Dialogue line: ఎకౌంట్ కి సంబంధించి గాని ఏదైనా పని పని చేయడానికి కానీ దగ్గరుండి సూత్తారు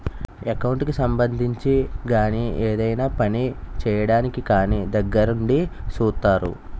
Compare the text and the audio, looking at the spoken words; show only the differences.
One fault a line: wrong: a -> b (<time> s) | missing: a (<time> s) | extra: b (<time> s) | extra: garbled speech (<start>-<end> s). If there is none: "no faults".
missing: పని (3.4 s)